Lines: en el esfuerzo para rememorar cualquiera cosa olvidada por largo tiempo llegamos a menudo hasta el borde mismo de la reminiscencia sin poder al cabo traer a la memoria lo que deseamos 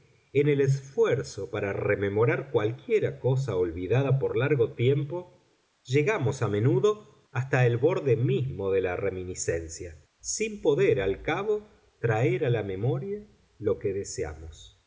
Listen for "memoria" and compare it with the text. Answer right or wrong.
right